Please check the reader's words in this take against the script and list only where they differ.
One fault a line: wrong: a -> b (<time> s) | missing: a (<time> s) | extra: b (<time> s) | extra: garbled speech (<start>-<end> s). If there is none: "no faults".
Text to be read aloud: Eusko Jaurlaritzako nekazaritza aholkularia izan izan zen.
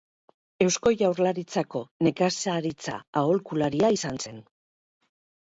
missing: izan (4.2 s)